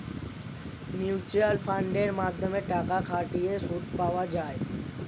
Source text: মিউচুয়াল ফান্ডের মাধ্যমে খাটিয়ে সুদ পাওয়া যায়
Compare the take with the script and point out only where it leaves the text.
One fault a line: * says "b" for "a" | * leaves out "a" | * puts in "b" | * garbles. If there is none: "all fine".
* puts in "টাকা"